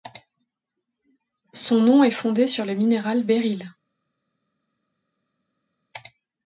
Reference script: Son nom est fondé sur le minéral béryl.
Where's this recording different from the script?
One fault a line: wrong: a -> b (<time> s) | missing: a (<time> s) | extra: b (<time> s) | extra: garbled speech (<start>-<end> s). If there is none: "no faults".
no faults